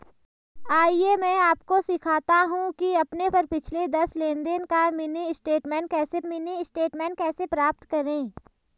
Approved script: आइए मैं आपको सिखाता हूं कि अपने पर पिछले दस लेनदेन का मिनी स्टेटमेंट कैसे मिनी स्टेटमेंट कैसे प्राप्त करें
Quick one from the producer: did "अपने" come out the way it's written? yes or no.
yes